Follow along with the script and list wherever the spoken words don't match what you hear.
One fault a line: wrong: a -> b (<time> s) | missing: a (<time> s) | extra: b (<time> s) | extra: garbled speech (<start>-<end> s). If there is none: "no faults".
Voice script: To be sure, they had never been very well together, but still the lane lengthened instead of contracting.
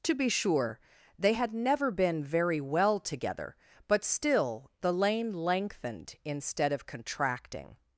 no faults